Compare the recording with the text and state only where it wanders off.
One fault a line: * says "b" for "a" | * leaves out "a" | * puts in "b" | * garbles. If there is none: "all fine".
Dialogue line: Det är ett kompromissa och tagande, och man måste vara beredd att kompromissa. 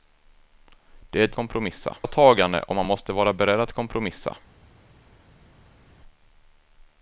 all fine